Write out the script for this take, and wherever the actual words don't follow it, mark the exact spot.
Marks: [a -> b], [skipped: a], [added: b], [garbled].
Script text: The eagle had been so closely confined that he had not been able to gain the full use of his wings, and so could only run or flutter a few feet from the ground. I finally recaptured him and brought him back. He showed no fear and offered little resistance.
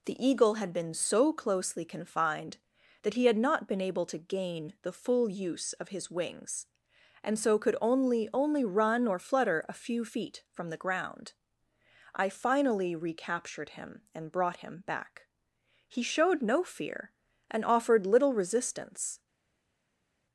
The eagle had been so closely confined that he had not been able to gain the full use of his wings, and so could only [added: only] run or flutter a few feet from the ground. I finally recaptured him and brought him back. He showed no fear and offered little resistance.